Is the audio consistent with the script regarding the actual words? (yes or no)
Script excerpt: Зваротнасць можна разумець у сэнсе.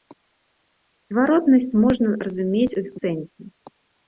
yes